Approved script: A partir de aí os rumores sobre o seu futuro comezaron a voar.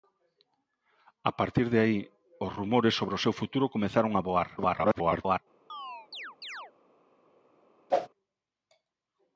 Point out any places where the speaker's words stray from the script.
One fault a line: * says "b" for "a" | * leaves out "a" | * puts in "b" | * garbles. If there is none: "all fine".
* garbles